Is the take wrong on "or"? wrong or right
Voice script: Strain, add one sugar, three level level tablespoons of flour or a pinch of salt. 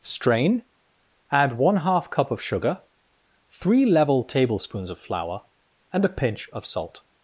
wrong